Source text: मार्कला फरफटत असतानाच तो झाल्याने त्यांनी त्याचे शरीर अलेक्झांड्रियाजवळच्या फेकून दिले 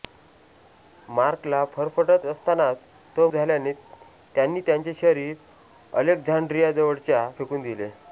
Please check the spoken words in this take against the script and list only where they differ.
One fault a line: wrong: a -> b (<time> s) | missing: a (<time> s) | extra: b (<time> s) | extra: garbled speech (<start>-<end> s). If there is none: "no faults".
no faults